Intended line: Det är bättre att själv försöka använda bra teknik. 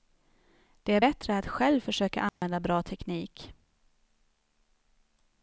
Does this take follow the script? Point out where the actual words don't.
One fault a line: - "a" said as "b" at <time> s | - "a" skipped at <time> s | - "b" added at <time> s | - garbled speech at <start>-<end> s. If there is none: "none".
none